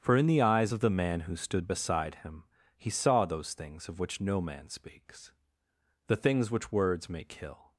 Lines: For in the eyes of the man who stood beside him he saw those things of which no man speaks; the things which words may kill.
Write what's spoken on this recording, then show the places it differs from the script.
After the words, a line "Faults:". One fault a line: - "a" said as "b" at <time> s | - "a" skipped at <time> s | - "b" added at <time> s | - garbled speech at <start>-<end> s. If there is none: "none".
For in the eyes of the man who stood beside him he saw those things of which no man speaks; the things which words may kill.
Faults:
none